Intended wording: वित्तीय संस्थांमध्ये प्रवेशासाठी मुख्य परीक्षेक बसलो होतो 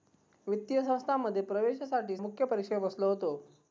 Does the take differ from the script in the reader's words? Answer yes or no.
no